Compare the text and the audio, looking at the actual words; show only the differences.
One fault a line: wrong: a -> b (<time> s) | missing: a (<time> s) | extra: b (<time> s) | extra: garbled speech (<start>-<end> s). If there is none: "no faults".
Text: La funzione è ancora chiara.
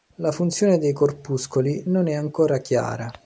extra: dei corpuscoli non (0.8 s)